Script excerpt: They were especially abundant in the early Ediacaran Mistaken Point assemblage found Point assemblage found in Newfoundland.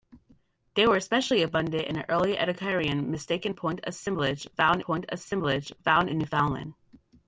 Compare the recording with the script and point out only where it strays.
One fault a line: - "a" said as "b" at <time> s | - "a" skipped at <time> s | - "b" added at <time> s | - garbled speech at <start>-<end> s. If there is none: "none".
none